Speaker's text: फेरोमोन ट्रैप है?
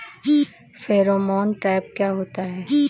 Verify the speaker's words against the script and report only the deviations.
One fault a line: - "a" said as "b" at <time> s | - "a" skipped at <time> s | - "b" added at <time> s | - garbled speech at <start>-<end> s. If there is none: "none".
- "क्या होता" added at 2.0 s